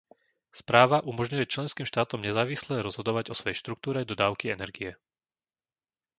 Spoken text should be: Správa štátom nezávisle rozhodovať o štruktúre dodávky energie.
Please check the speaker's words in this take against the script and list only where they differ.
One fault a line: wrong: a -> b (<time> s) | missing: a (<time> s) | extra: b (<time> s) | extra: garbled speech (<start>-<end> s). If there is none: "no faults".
extra: umožňuje členským (1.1 s)
extra: svojej (3.3 s)